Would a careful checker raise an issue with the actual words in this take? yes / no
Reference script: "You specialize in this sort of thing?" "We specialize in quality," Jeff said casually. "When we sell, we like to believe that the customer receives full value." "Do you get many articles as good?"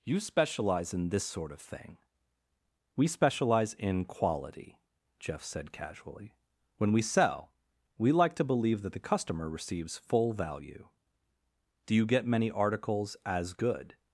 no